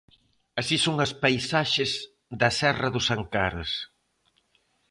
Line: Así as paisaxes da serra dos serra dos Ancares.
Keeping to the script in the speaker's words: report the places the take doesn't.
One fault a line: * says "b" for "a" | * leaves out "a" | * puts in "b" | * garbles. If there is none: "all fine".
* puts in "son"
* leaves out "serra dos"